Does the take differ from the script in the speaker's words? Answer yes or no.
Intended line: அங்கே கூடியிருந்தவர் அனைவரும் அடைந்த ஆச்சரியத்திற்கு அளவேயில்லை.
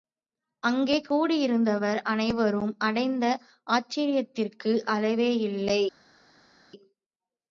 no